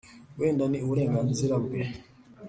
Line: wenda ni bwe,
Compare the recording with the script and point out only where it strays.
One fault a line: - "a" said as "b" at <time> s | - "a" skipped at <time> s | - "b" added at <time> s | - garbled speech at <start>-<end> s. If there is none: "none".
- "uburenganzira" added at 0.8 s